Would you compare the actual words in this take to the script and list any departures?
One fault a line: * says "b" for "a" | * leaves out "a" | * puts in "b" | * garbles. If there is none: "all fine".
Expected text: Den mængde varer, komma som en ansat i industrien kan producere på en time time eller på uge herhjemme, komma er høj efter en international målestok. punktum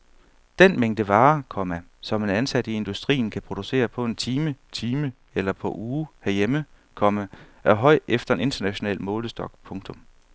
all fine